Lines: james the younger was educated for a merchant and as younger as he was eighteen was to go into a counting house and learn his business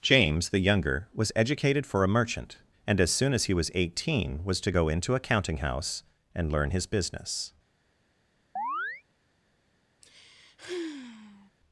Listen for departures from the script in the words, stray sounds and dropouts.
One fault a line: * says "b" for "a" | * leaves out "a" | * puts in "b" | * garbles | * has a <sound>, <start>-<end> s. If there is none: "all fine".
* says "soon" for "younger"
* has a chirp, 8.6-9.0 s
* has a sigh, 10.0-11.5 s